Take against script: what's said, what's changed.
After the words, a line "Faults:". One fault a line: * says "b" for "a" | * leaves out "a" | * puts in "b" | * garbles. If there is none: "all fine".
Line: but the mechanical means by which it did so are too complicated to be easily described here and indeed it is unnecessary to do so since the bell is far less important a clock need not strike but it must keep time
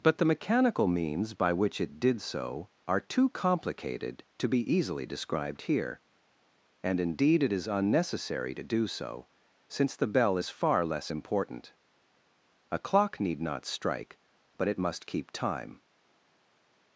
but the mechanical means by which it did so are too complicated to be easily described here and indeed it is unnecessary to do so since the bell is far less important a clock need not strike but it must keep time
Faults:
all fine